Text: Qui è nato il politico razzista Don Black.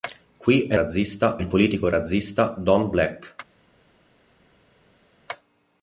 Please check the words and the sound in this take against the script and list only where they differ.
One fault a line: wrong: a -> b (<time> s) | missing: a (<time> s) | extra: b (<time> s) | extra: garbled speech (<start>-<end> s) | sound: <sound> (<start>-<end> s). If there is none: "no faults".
wrong: nato -> razzista (0.7 s)